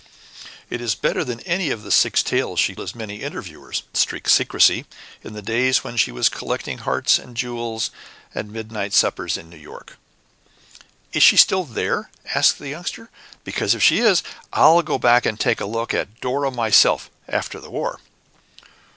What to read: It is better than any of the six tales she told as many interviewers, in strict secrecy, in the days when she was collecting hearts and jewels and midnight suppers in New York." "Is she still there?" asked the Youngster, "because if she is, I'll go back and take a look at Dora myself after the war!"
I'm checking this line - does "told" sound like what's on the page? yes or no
no